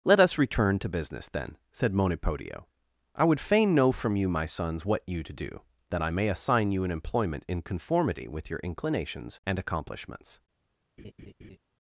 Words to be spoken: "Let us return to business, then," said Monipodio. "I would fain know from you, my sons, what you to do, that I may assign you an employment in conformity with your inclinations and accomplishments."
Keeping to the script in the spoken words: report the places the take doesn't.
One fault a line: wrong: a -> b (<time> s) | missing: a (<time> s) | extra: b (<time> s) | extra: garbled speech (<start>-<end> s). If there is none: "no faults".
no faults